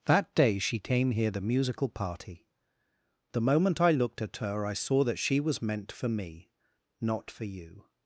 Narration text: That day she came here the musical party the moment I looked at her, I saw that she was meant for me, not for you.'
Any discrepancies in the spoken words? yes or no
no